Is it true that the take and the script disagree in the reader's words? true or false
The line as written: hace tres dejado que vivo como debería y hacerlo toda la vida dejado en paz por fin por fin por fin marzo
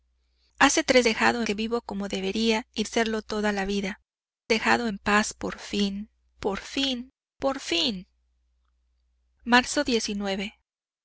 false